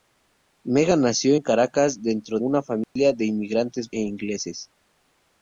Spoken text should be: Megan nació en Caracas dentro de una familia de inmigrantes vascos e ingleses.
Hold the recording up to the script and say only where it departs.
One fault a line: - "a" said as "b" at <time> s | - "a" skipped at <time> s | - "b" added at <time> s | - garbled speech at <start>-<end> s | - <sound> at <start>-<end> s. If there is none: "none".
- "de" skipped at 2.4 s
- dropout at 2.8-3.0 s
- "vascos" skipped at 3.9 s